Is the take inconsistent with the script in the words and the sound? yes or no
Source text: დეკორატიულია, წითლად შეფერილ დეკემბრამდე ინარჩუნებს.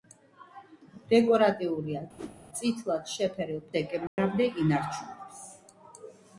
yes